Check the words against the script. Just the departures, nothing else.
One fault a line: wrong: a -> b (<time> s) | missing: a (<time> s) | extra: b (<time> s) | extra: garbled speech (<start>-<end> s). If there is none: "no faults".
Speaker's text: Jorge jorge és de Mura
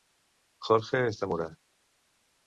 missing: jorge (1.0 s)